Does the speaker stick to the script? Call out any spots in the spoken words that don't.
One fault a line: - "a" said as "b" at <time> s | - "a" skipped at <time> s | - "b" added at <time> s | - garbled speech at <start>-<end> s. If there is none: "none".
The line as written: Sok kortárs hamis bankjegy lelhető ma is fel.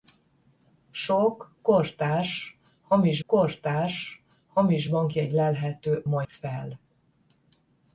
- "kortárs hamis" added at 3.3 s
- "is" skipped at 6.2 s